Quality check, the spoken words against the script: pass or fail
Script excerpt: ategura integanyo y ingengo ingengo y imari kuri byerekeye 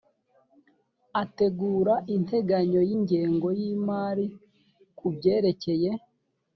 fail